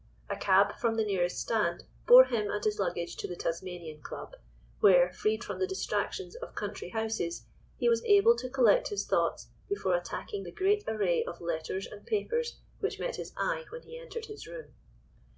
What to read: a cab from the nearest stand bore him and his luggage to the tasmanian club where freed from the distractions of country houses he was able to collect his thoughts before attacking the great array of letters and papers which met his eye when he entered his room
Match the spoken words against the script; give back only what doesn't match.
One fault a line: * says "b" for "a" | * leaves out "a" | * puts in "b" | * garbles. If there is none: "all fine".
all fine